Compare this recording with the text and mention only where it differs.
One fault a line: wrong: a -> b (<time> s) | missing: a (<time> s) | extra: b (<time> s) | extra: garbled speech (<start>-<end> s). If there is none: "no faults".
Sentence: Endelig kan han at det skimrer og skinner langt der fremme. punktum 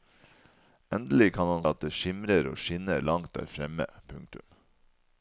no faults